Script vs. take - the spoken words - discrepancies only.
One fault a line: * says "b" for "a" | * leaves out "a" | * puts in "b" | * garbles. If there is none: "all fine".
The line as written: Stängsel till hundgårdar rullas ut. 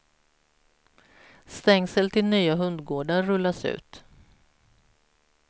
* puts in "nya"